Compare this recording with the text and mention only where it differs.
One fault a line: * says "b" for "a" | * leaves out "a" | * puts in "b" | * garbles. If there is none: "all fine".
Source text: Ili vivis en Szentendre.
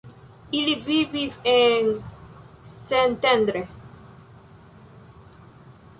all fine